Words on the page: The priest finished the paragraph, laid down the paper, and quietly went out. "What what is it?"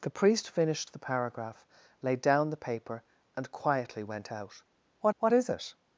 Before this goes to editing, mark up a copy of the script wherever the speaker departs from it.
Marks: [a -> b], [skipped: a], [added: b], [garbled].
The priest finished the paragraph, laid down the paper, and quietly went out. "What what is it?"